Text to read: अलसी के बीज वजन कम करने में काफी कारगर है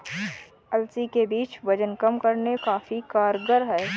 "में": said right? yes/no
no